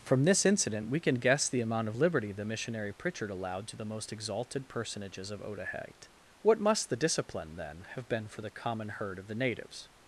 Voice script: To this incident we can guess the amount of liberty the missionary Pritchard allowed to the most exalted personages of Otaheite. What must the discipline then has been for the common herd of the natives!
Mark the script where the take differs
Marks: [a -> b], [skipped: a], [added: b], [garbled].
[To -> From] this incident we can guess the amount of liberty the missionary Pritchard allowed to the most exalted personages of Otaheite. What must the discipline then [has -> have] been for the common herd of the natives!